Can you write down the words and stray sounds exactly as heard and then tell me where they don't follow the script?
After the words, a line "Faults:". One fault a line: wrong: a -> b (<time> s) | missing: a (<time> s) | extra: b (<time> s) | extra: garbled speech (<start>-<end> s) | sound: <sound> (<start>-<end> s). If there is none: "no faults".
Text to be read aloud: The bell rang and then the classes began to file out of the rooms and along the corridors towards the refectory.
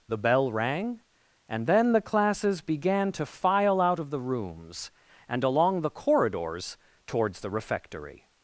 The bell rang and then the classes began to file out of the rooms and along the corridors towards the refectory.
Faults:
no faults